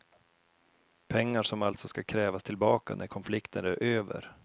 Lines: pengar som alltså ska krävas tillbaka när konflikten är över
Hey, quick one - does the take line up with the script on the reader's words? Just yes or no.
yes